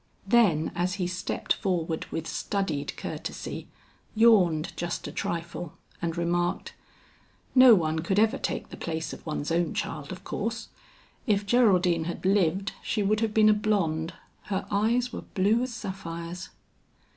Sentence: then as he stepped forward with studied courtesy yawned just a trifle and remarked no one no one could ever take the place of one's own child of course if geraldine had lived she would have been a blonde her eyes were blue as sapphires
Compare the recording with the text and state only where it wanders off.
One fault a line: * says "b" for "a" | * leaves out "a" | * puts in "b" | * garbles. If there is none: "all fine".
* leaves out "no one"